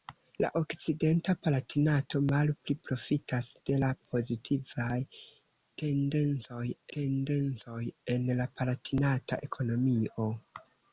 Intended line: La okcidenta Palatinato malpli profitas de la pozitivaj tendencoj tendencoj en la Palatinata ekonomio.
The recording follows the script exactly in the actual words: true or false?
true